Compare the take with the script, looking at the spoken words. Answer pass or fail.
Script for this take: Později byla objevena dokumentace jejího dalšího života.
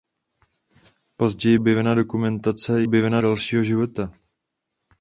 fail